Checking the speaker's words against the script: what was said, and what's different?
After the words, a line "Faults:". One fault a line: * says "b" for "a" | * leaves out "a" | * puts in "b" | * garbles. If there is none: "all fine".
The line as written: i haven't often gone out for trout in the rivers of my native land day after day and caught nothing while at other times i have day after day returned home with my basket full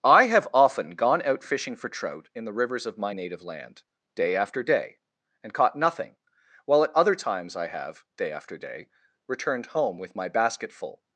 i have often gone out fishing for trout in the rivers of my native land day after day and caught nothing while at other times i have day after day returned home with my basket full
Faults:
* says "have" for "haven't"
* puts in "fishing"